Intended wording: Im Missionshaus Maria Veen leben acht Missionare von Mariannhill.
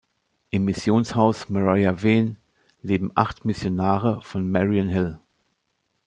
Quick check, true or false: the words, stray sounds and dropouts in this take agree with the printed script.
true